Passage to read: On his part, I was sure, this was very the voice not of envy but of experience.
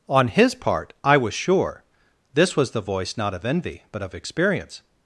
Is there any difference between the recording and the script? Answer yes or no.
yes